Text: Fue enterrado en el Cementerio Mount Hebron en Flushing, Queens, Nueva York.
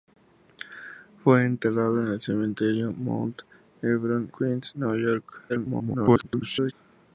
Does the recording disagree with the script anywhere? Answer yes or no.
yes